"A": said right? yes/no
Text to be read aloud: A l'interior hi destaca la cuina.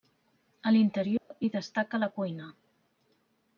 yes